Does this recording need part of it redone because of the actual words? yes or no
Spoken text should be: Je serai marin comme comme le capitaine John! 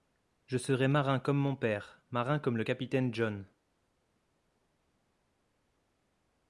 yes